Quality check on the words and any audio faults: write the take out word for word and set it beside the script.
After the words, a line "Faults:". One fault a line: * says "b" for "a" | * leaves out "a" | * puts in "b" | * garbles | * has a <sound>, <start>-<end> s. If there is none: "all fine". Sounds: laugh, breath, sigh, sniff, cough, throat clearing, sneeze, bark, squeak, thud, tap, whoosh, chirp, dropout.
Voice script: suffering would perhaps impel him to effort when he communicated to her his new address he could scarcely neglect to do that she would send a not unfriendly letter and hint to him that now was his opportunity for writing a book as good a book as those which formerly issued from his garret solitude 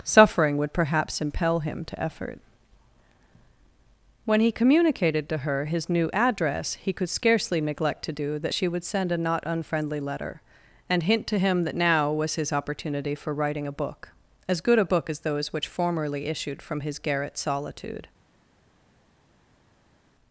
suffering would perhaps impel him to effort when he communicated to her his new address he could scarcely neglect to do that she would send a not unfriendly letter and hint to him that now was his opportunity for writing a book as good a book as those which formerly issued from his garret solitude
Faults:
all fine